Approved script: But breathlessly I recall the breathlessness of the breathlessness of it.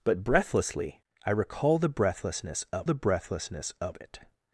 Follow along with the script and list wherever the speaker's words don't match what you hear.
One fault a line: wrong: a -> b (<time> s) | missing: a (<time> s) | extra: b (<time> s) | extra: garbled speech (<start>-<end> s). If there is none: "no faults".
no faults